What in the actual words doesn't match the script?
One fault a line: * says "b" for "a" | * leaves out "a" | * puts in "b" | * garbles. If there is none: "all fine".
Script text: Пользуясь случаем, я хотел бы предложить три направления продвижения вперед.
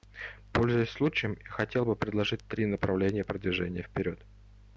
all fine